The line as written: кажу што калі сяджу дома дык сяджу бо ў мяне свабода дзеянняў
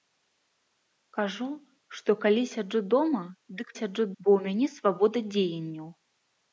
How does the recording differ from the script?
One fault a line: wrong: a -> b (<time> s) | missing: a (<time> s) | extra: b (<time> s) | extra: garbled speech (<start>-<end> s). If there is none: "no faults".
no faults